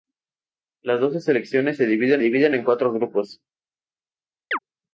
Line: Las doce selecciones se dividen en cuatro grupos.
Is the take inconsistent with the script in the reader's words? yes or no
yes